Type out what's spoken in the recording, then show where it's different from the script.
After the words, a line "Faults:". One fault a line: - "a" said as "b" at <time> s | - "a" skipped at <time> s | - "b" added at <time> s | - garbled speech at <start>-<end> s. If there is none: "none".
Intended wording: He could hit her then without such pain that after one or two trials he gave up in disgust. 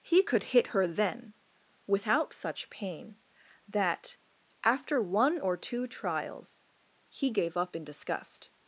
He could hit her then without such pain that after one or two trials he gave up in disgust.
Faults:
none